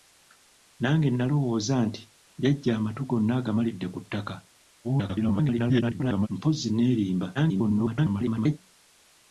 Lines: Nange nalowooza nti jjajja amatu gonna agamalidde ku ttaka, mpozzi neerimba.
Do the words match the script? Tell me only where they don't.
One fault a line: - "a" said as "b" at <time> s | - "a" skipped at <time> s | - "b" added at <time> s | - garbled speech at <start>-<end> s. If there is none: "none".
- garbled speech at 4.8-6.3 s
- garbled speech at 7.3-8.6 s